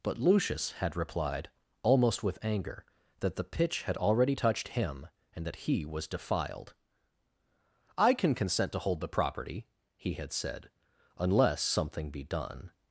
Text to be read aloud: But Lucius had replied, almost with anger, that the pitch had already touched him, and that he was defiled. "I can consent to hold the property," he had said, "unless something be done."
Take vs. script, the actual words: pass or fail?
pass